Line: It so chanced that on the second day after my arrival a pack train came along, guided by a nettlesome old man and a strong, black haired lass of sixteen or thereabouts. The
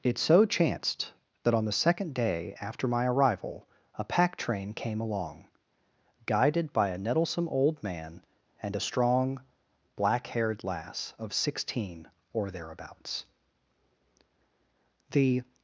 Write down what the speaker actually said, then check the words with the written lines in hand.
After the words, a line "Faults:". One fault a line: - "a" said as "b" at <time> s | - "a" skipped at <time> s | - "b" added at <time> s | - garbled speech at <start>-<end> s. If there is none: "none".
It so chanced that on the second day after my arrival a pack train came along, guided by a nettlesome old man and a strong, black haired lass of sixteen or thereabouts. The
Faults:
none